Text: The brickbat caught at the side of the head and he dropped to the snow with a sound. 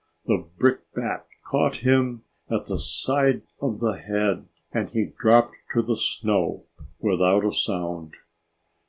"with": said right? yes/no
no